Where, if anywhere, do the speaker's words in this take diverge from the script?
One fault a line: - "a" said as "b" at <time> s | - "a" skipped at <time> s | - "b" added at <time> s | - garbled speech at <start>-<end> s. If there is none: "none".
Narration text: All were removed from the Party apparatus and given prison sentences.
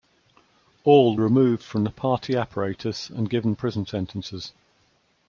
- "were" skipped at 1.1 s